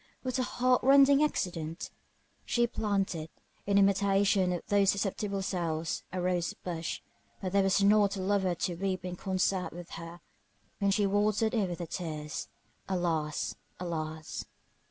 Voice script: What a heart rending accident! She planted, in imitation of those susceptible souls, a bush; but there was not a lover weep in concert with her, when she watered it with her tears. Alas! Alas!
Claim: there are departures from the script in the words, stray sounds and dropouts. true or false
true